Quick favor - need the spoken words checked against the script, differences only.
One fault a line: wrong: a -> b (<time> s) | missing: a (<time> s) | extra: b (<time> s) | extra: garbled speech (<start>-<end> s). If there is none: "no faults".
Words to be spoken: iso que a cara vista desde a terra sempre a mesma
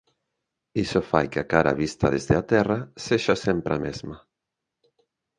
extra: fai (1.1 s)
extra: sexa (3.1 s)